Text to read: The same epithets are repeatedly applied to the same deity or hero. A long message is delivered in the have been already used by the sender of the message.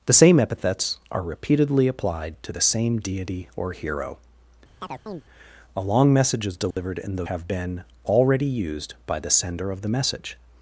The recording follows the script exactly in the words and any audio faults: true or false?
false